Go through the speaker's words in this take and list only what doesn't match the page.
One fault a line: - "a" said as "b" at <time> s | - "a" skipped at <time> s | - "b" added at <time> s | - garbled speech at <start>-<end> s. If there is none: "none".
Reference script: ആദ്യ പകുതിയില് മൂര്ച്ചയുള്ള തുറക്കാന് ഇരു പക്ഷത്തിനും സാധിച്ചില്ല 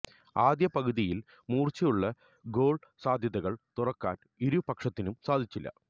- "ഗോള് സാധ്യതകള്" added at 2.4 s